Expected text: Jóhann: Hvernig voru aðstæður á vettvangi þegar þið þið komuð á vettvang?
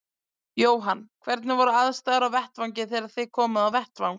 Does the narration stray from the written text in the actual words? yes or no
yes